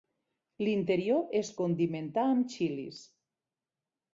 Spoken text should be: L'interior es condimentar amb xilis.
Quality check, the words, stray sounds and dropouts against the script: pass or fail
pass